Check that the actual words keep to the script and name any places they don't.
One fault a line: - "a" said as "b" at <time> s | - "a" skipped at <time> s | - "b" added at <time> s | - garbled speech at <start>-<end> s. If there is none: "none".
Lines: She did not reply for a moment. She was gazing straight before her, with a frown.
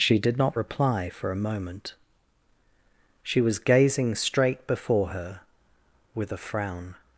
none